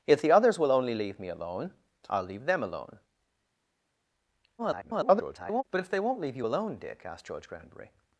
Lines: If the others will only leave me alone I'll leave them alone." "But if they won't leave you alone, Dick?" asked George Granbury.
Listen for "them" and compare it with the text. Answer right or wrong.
right